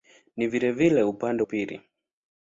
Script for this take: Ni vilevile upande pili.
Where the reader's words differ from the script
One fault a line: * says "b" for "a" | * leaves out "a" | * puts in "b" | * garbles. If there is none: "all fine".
all fine